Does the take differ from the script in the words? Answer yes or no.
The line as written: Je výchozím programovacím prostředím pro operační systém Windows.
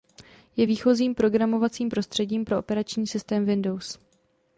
no